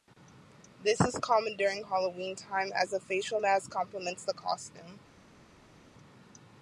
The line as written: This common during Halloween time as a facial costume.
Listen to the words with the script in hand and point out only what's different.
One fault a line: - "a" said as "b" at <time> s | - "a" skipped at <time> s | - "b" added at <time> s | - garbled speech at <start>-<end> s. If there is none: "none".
- "is" added at 1.0 s
- "mask complements the" added at 3.4 s